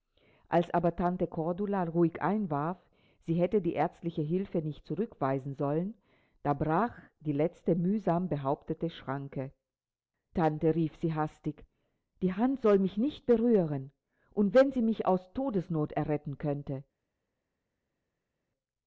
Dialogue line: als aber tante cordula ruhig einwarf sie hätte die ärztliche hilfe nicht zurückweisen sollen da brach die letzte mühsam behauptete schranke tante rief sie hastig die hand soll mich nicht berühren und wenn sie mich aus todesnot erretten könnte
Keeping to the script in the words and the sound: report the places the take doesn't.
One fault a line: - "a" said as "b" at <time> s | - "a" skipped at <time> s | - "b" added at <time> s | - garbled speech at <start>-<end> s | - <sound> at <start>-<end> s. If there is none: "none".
none